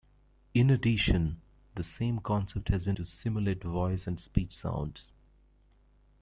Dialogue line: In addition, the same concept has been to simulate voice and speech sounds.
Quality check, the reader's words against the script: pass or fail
pass